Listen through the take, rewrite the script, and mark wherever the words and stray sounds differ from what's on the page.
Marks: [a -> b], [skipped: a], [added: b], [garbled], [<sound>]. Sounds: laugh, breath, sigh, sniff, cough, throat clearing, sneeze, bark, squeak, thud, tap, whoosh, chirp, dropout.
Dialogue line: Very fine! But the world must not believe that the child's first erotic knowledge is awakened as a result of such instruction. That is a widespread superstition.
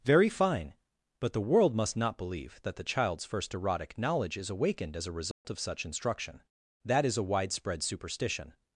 Very fine! But the world must not believe that the child's first erotic knowledge is awakened as a result [dropout] of such instruction. That is a widespread superstition.